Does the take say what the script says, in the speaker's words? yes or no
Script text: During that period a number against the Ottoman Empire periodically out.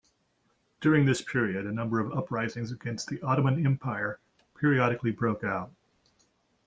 no